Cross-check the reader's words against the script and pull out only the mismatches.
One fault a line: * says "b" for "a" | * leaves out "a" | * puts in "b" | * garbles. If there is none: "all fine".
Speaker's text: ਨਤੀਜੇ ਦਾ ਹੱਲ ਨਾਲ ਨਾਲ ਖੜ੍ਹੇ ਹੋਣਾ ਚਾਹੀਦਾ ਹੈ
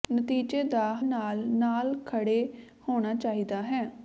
* leaves out "ਹੱਲ"